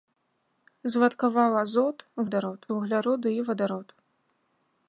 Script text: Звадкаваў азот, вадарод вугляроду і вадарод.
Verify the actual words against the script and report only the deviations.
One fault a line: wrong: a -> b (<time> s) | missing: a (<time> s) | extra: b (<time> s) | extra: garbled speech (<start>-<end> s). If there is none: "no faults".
no faults